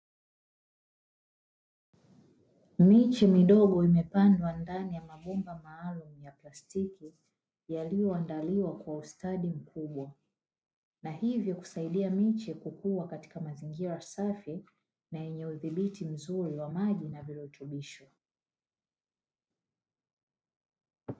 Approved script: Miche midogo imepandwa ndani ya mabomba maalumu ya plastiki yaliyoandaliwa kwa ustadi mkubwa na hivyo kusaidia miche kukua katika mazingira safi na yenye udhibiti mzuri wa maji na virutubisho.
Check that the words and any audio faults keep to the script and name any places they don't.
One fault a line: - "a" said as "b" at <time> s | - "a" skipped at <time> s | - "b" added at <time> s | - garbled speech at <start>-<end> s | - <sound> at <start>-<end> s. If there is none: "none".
none